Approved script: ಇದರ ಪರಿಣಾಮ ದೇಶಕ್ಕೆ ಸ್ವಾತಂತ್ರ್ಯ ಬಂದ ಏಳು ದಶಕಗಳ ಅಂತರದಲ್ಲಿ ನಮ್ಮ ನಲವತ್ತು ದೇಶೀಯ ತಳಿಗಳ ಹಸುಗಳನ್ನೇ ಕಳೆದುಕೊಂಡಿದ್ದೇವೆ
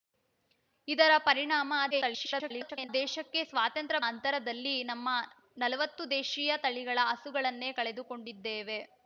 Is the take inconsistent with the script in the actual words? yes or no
yes